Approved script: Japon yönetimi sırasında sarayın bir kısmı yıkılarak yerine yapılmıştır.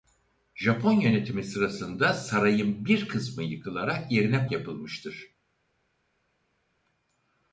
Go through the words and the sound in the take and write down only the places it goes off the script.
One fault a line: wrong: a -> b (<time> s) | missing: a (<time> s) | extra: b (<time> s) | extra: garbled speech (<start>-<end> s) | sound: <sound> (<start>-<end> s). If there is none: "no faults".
no faults